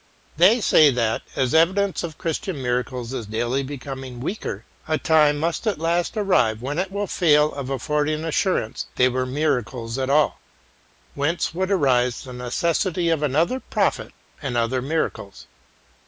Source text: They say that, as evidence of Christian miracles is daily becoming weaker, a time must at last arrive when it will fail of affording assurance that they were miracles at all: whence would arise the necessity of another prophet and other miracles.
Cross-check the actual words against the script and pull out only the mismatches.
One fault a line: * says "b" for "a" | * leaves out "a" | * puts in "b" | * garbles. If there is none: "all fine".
* leaves out "that"